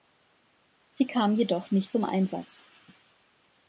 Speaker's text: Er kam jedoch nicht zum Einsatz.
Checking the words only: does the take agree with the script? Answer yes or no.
no